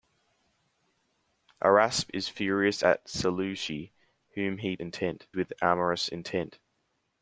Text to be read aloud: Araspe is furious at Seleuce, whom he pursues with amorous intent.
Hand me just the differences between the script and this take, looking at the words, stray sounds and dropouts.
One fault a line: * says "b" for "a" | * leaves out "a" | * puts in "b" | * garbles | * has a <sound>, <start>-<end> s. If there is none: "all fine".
* says "intent" for "pursues"